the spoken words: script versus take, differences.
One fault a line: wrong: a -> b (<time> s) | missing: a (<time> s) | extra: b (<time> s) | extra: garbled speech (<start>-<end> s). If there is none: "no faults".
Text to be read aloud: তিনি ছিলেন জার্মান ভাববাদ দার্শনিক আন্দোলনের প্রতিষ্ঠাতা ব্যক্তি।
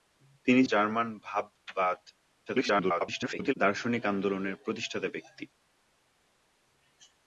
missing: ছিলেন (0.6 s)
extra: garbled speech (2.5-3.5 s)